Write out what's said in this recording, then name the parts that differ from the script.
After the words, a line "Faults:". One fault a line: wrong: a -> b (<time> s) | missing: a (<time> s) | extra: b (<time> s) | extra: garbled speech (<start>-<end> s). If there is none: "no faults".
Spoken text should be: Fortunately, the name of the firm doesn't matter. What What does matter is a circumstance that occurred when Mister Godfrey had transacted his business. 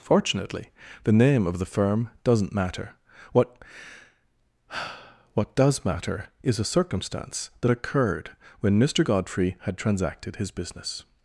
Fortunately, the name of the firm doesn't matter. What What does matter is a circumstance that occurred when Mister Godfrey had transacted his business.
Faults:
no faults